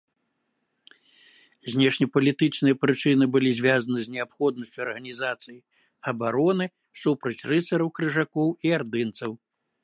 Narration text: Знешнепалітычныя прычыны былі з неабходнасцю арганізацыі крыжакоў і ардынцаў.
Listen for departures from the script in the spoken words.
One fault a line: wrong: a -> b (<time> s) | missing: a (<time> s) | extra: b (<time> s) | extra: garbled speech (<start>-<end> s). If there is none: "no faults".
extra: звязаны (3.6 s)
extra: абароны супраць рыцараў (6.1 s)